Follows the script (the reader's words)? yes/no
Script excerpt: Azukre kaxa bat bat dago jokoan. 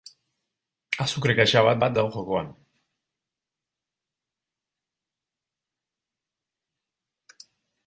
yes